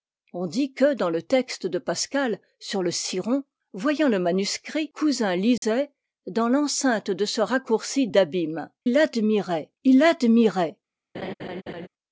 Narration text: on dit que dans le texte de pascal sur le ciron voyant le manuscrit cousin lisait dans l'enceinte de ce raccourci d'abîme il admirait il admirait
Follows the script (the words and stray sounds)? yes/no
no